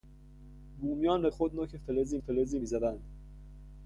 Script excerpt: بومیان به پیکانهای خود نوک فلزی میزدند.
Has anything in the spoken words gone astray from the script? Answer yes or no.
yes